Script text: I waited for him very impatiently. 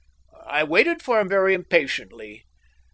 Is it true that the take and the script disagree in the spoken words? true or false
false